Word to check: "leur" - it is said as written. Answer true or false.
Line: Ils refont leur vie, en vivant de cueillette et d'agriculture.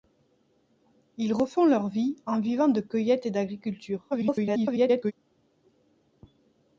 true